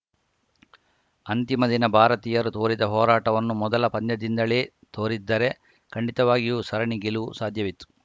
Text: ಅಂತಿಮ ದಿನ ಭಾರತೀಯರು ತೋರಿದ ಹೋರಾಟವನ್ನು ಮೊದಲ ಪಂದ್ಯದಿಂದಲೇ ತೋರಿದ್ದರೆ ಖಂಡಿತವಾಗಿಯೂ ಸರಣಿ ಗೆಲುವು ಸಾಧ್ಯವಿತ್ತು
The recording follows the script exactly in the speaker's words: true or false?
true